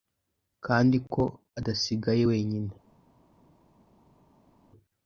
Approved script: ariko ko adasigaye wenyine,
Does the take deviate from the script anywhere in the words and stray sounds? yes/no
yes